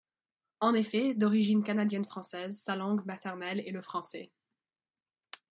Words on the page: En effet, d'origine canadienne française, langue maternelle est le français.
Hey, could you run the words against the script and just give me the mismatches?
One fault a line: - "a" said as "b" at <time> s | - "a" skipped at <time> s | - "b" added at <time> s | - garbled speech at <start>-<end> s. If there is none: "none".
- "sa" added at 2.6 s